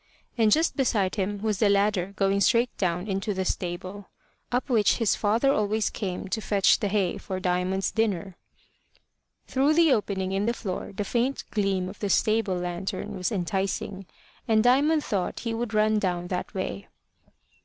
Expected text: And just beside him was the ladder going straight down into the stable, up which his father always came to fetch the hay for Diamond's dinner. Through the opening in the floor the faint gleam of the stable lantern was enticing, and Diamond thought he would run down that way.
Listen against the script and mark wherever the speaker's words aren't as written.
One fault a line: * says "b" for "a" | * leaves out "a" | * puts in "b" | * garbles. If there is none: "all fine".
all fine